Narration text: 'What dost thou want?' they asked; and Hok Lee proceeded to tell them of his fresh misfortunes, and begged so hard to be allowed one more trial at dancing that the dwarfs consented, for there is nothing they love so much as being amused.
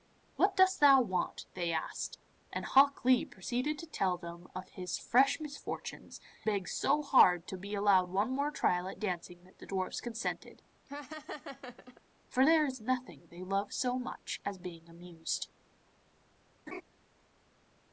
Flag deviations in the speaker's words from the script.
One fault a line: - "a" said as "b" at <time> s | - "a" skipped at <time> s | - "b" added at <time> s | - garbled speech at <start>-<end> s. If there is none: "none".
- "and" skipped at 6.2 s